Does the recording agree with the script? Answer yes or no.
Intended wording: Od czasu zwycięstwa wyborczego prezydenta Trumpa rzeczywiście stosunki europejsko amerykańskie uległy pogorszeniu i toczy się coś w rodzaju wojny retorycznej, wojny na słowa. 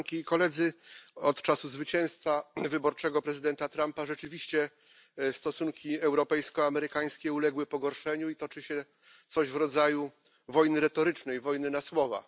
yes